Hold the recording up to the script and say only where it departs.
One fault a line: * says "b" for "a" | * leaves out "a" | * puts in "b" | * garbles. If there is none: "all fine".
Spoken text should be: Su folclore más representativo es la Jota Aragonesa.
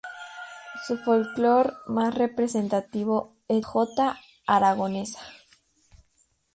* leaves out "la"